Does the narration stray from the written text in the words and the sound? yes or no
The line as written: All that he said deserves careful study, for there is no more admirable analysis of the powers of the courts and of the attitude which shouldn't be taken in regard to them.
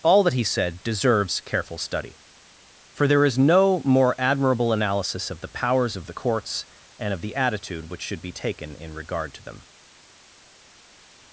yes